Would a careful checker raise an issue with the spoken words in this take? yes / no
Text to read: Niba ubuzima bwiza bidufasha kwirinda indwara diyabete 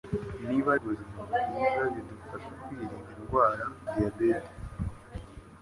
no